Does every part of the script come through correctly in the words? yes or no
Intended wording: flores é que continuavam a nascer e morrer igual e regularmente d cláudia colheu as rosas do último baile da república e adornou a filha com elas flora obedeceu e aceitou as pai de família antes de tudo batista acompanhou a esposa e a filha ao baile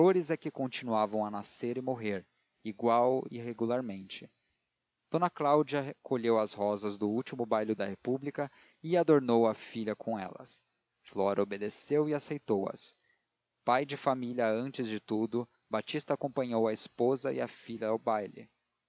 yes